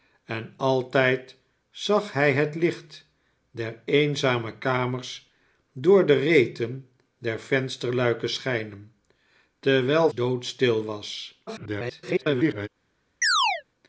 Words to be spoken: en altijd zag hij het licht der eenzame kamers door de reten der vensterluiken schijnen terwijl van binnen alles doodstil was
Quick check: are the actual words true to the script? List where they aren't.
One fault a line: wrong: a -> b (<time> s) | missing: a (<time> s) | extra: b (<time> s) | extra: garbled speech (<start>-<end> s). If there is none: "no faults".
missing: van binnen alles (10.1 s)
extra: garbled speech (11.5-12.7 s)